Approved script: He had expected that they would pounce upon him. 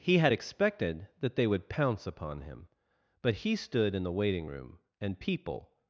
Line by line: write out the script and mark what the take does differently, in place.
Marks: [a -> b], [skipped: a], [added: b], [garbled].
He had expected that they would pounce upon him. [added: But he stood in the waiting room and people]